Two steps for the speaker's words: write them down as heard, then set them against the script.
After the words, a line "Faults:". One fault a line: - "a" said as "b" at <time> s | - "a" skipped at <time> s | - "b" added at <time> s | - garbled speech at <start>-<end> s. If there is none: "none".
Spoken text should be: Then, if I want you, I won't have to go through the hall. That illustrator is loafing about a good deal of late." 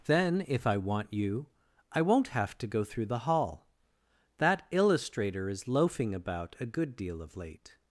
Then, if I want you, I won't have to go through the hall. That illustrator is loafing about a good deal of late."
Faults:
none